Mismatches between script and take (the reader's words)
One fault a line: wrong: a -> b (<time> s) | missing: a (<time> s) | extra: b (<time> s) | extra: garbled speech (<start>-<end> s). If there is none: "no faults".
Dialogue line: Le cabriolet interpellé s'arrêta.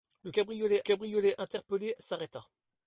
extra: cabriolet (0.8 s)